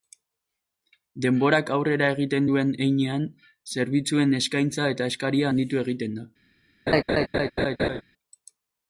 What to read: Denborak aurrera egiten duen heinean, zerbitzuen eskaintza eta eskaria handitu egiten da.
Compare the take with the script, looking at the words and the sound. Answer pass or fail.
fail